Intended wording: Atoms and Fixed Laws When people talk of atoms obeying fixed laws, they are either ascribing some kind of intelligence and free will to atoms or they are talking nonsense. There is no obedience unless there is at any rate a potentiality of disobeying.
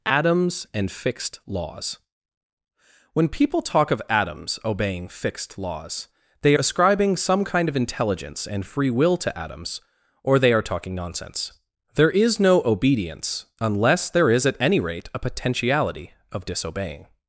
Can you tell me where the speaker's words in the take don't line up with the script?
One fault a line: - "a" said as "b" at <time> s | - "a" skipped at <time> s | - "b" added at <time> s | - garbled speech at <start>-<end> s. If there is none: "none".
- "are either" skipped at 6.5 s